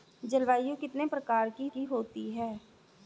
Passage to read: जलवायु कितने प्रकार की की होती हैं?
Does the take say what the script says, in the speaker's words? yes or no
yes